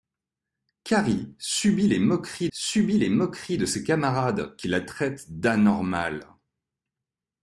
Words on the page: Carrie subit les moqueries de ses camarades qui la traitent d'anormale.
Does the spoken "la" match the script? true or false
true